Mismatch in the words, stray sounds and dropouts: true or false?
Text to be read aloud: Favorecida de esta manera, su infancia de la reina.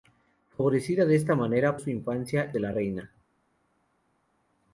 false